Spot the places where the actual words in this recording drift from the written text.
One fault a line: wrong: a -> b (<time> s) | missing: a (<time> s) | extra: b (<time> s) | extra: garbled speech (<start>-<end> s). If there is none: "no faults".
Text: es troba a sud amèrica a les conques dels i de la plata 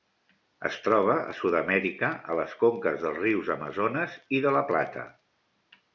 extra: rius amazones (3.3 s)